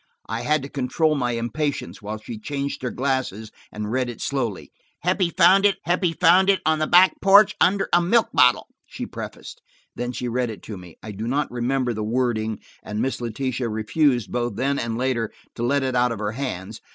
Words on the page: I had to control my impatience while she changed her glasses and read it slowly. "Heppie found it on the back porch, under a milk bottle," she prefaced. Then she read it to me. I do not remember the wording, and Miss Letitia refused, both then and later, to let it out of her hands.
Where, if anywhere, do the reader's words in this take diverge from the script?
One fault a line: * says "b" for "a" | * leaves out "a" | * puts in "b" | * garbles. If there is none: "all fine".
* puts in "heppie found it"